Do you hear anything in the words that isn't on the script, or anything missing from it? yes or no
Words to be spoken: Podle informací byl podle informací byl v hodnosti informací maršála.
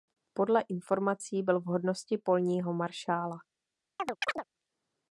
yes